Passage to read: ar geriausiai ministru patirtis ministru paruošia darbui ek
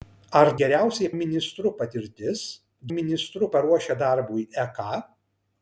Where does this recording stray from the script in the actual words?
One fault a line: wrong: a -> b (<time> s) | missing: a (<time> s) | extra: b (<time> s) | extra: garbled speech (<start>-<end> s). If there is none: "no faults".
no faults